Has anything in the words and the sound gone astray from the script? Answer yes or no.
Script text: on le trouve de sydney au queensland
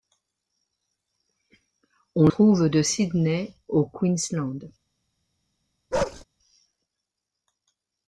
yes